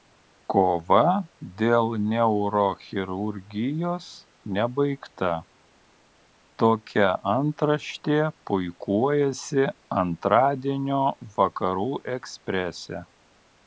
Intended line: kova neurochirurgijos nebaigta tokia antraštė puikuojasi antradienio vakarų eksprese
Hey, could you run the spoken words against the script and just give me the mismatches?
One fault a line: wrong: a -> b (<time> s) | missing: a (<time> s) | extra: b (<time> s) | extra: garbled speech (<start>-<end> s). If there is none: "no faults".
extra: dėl (1.6 s)